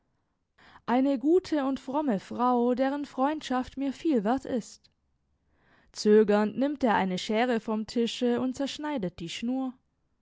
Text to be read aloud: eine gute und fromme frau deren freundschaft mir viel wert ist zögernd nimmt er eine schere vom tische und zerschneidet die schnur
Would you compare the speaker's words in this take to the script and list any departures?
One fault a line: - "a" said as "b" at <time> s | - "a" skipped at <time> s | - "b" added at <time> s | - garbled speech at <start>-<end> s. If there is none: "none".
none